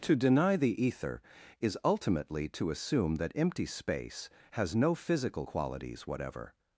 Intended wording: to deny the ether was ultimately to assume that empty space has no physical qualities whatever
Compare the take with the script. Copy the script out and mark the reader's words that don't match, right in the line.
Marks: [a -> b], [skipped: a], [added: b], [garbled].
to deny the ether [was -> is] ultimately to assume that empty space has no physical qualities whatever